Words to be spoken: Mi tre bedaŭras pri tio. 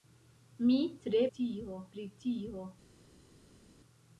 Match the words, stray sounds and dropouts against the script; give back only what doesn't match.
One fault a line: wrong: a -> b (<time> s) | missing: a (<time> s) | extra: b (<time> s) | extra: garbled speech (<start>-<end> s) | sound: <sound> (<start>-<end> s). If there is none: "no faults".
wrong: bedaŭras -> tio (1.4 s)